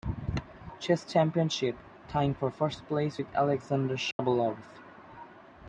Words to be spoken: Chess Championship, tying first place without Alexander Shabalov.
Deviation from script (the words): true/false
true